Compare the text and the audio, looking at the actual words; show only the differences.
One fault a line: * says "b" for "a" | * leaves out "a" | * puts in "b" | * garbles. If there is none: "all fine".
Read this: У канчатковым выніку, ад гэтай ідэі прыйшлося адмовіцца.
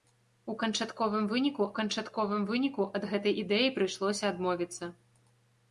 * puts in "канчатковым выніку"